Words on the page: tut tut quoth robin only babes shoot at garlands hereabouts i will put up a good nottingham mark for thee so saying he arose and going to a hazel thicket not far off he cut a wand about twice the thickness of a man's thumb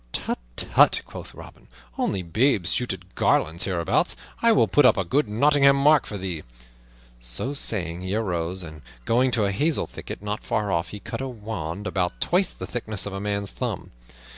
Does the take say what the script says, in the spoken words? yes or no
yes